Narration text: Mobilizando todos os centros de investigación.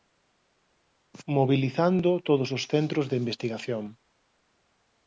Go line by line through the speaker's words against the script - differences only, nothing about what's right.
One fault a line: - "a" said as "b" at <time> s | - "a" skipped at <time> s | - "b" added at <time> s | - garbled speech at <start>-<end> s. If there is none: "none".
none